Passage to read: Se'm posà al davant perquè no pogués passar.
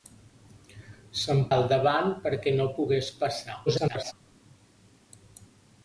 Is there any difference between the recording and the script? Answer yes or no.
yes